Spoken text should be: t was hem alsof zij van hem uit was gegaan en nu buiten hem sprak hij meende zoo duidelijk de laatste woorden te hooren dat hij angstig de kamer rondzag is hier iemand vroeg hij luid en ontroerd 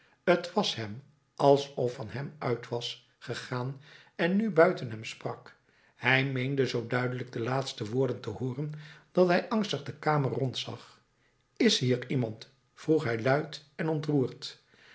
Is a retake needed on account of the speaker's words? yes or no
yes